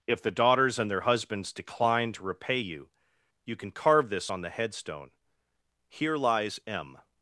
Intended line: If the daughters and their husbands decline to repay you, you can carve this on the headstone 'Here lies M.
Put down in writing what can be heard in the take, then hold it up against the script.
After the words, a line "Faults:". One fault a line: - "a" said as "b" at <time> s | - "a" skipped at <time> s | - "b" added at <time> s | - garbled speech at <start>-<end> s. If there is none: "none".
If the daughters and their husbands decline to repay you, you can carve this on the headstone 'Here lies M.
Faults:
none